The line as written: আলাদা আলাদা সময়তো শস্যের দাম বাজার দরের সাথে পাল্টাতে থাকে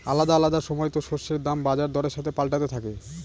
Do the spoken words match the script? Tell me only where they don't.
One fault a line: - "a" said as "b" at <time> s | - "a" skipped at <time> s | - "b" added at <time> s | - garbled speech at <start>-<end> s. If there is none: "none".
none